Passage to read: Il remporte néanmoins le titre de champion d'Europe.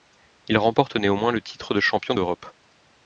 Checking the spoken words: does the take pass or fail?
pass